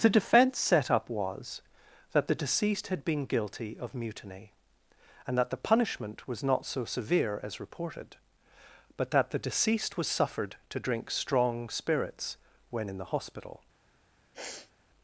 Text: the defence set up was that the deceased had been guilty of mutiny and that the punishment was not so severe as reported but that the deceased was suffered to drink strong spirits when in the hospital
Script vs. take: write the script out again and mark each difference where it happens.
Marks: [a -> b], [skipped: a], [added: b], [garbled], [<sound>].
the defence set up was that the deceased had been guilty of mutiny and that the punishment was not so severe as reported but that the deceased was suffered to drink strong spirits when in the hospital [sniff]